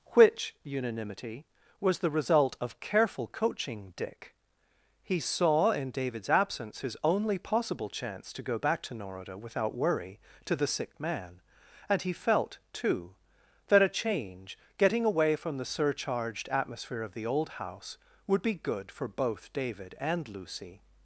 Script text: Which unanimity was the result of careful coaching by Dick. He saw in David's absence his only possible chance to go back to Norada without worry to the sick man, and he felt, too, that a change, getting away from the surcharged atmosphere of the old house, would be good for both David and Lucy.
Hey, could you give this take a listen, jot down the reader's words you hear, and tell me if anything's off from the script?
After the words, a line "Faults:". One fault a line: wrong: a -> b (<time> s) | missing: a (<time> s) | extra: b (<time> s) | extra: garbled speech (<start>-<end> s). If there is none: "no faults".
Which unanimity was the result of careful coaching Dick. He saw in David's absence his only possible chance to go back to Norada without worry to the sick man, and he felt, too, that a change, getting away from the surcharged atmosphere of the old house, would be good for both David and Lucy.
Faults:
missing: by (3.9 s)